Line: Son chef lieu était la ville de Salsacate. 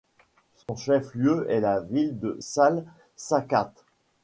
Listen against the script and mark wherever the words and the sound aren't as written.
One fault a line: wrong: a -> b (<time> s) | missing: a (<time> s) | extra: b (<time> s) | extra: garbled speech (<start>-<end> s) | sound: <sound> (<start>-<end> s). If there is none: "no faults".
sound: dropout (0.6-0.7 s)
wrong: était -> est (1.5 s)